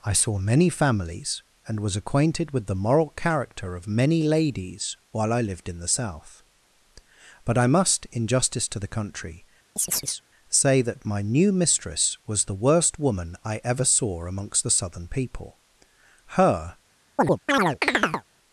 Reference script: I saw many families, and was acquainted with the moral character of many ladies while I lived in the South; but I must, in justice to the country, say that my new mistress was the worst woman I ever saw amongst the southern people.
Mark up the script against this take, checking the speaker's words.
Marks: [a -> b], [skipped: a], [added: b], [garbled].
I saw many families, and was acquainted with the moral character of many ladies while I lived in the South; but I must, in justice to the country, say that my new mistress was the worst woman I ever saw amongst the southern people. [added: Her]